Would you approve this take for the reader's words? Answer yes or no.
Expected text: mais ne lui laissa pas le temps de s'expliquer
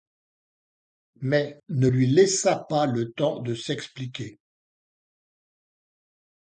yes